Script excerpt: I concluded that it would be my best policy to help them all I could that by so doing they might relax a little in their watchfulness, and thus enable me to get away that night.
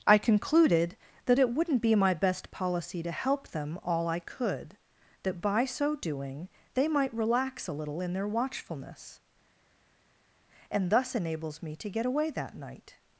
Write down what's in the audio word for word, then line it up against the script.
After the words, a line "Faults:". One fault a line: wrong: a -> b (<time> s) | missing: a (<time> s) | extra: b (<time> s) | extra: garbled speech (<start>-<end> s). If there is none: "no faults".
I concluded that it wouldn't be my best policy to help them all I could that by so doing they might relax a little in their watchfulness, and thus enables me to get away that night.
Faults:
wrong: would -> wouldn't (1.5 s)
wrong: enable -> enables (11.1 s)